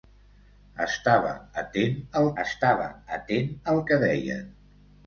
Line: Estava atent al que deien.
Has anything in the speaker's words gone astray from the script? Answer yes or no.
yes